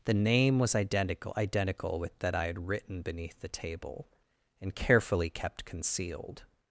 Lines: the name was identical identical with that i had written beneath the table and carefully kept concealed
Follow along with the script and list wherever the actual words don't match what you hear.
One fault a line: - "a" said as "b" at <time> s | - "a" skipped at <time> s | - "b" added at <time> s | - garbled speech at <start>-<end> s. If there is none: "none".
none